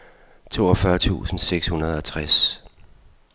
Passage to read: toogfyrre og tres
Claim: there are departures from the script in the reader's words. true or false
true